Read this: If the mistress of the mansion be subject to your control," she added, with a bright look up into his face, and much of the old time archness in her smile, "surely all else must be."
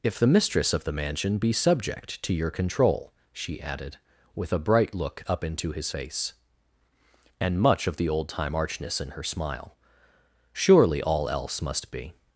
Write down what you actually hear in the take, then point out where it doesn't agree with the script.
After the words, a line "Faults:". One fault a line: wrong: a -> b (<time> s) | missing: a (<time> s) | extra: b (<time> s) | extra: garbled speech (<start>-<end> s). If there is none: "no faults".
If the mistress of the mansion be subject to your control," she added, with a bright look up into his face, and much of the old time archness in her smile, "surely all else must be."
Faults:
no faults